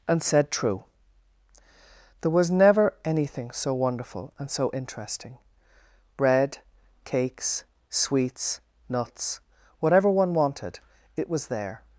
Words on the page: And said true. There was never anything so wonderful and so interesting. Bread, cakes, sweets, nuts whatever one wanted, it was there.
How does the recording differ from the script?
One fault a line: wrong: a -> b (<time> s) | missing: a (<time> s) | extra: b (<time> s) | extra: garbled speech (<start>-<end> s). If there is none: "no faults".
no faults